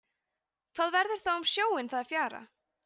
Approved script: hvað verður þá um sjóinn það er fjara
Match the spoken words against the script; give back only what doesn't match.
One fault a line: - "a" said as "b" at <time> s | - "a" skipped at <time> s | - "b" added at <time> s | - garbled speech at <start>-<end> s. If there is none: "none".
none